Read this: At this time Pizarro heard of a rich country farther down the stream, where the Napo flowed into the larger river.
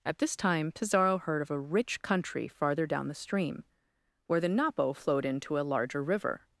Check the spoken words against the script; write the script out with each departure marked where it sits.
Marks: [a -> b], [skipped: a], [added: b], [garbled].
At this time Pizarro heard of a rich country farther down the stream, where the Napo flowed into [the -> a] larger river.